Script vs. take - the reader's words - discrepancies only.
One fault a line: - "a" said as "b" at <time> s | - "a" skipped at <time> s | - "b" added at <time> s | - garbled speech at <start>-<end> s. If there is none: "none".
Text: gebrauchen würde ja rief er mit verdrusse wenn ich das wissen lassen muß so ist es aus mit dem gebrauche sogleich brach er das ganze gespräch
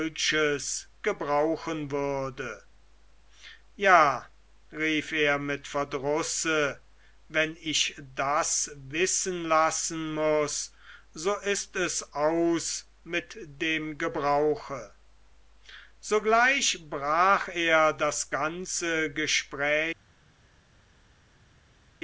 none